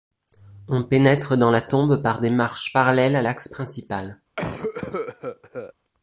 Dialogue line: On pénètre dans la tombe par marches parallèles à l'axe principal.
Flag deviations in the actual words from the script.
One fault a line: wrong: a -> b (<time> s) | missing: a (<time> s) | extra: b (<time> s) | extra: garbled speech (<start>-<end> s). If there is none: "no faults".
extra: des (2.2 s)